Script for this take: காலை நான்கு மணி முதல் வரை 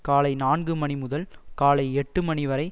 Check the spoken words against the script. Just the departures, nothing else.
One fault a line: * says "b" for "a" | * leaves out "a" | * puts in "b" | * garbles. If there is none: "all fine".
* puts in "காலை எட்டு மணி"